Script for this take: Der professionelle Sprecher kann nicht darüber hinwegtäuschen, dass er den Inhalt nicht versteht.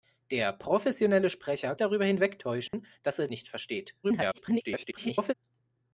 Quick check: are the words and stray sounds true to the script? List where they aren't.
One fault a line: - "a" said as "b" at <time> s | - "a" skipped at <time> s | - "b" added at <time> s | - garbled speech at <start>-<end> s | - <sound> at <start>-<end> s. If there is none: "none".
- "kann nicht" skipped at 1.8 s
- dropout at 2.7-2.7 s
- "den Inhalt" skipped at 3.3 s
- garbled speech at 4.0-5.3 s